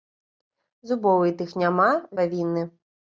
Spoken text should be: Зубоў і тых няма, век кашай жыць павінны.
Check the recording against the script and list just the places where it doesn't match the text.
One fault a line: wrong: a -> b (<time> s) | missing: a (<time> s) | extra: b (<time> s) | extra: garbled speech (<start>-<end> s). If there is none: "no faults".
missing: век кашай жыць (1.9 s)